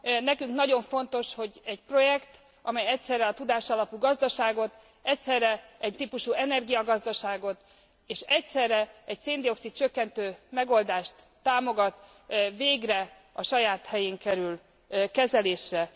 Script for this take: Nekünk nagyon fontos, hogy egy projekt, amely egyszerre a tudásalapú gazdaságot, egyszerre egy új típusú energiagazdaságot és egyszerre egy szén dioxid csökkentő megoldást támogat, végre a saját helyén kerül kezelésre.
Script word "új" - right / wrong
wrong